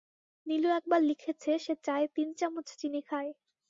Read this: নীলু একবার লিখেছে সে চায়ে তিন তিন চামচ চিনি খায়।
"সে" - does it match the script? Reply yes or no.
yes